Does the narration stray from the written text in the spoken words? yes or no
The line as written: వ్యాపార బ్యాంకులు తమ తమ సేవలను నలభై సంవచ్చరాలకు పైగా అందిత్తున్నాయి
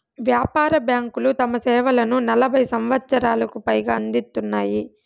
yes